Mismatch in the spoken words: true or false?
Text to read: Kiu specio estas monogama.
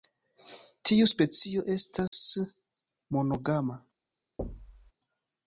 true